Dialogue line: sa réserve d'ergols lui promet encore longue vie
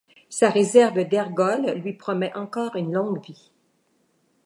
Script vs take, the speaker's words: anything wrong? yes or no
yes